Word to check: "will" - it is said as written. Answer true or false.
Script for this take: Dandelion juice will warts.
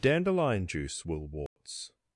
true